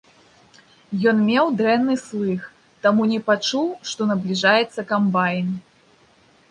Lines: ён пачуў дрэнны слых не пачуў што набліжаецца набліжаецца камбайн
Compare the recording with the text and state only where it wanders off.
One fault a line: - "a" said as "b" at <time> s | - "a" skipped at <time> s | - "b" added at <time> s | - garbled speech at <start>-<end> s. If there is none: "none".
- "пачуў" said as "меў" at 1.3 s
- "таму" added at 2.9 s
- "набліжаецца" skipped at 4.9 s